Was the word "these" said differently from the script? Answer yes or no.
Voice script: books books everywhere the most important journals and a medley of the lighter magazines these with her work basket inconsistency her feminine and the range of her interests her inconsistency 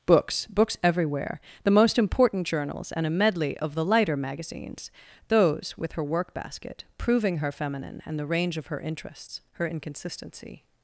yes